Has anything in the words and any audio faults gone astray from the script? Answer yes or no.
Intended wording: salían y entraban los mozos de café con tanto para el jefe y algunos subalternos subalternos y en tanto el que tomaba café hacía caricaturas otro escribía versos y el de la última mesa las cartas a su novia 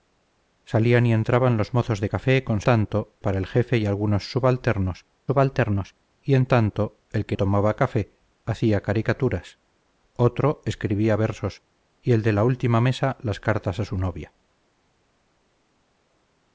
no